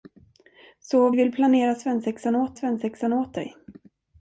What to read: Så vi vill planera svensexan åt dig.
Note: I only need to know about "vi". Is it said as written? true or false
false